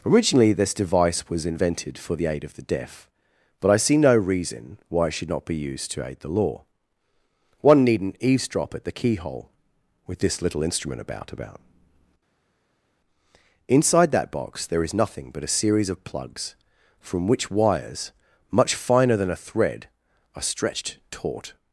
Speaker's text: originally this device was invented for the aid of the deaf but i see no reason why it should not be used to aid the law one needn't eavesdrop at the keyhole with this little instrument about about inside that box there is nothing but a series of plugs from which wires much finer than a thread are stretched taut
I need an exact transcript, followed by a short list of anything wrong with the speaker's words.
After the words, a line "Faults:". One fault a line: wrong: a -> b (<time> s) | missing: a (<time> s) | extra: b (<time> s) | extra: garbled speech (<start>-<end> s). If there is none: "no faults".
originally this device was invented for the aid of the deaf but i see no reason why it should not be used to aid the law one needn't eavesdrop at the keyhole with this little instrument about about inside that box there is nothing but a series of plugs from which wires much finer than a thread are stretched taut
Faults:
no faults